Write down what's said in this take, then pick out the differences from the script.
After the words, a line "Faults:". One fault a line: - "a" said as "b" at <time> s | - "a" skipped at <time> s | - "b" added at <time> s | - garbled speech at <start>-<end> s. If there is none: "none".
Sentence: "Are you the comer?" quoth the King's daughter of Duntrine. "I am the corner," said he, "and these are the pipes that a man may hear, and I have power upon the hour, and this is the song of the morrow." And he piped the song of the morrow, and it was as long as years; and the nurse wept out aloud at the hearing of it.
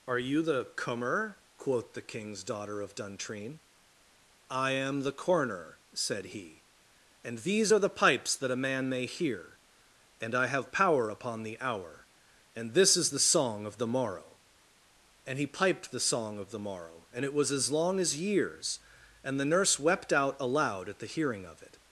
"Are you the comer?" quoth the King's daughter of Duntrine. "I am the corner," said he, "and these are the pipes that a man may hear, and I have power upon the hour, and this is the song of the morrow." And he piped the song of the morrow, and it was as long as years; and the nurse wept out aloud at the hearing of it.
Faults:
none